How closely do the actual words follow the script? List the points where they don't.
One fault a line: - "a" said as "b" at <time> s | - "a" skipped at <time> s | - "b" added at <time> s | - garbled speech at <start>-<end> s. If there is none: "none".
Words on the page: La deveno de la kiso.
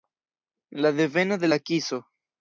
none